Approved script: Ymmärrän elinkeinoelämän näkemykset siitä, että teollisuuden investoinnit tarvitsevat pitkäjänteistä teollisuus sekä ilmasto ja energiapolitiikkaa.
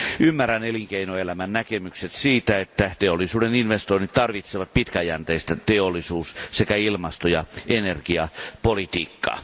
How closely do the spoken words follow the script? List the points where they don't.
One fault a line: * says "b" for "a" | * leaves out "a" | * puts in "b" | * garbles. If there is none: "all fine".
all fine